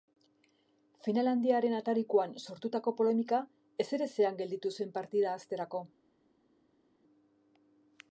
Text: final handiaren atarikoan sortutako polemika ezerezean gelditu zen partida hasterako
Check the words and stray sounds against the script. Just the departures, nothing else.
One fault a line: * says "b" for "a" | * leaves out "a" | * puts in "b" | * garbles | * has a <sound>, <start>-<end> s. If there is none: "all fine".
all fine